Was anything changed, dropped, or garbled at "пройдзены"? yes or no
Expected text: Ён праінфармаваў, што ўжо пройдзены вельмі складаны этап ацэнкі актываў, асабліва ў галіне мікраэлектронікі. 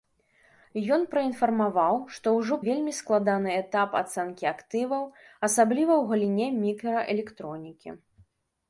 yes